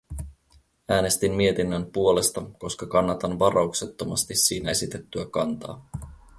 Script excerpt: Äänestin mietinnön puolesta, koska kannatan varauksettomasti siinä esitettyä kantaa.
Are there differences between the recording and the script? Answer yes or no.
no